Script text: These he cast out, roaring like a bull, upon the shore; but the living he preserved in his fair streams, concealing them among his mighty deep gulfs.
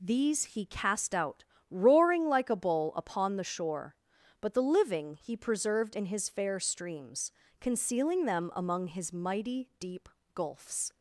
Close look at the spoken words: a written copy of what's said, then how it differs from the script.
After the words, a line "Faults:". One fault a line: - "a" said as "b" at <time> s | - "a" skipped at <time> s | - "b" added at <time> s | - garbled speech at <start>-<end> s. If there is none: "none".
These he cast out, roaring like a bull, upon the shore; but the living he preserved in his fair streams, concealing them among his mighty deep gulfs.
Faults:
none